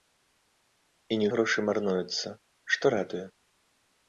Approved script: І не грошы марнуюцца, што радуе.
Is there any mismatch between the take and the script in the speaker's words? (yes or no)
no